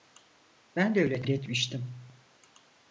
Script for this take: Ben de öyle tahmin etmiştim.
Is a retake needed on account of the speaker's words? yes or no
yes